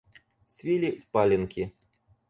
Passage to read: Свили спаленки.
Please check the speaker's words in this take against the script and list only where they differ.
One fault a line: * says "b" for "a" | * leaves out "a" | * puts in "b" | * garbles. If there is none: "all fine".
all fine